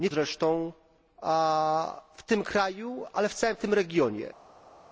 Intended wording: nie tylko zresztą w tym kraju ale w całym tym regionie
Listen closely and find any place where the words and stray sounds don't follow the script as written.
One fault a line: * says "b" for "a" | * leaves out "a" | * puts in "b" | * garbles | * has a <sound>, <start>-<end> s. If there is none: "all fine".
* leaves out "tylko"